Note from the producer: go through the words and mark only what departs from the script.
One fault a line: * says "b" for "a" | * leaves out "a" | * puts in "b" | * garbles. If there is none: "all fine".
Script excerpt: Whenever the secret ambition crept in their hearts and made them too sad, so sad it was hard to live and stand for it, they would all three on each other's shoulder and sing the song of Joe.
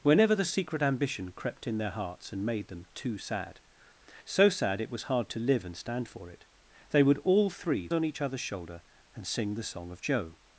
all fine